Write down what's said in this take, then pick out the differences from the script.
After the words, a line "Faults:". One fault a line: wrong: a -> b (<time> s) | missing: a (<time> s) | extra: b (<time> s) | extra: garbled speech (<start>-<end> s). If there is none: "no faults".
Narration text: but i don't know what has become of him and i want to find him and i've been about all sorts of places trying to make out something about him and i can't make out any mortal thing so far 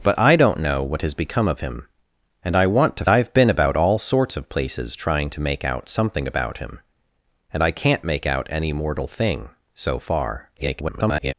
but i don't know what has become of him and i want to i've been about all sorts of places trying to make out something about him and i can't make out any mortal thing so far [garbled]
Faults:
missing: find him and (3.0 s)
extra: garbled speech (10.6-11.3 s)